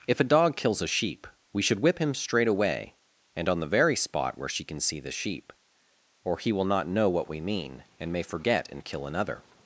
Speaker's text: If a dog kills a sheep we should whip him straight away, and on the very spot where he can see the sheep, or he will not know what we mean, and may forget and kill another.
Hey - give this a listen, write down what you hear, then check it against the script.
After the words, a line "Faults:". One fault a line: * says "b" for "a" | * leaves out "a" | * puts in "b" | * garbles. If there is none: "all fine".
If a dog kills a sheep we should whip him straight away, and on the very spot where she can see the sheep, or he will not know what we mean, and may forget and kill another.
Faults:
* says "she" for "he"